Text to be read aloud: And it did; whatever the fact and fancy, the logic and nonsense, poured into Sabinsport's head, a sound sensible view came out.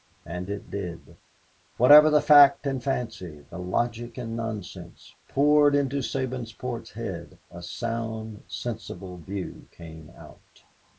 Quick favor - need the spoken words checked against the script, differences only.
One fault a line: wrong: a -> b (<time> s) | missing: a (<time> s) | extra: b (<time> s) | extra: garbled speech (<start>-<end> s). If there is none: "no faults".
no faults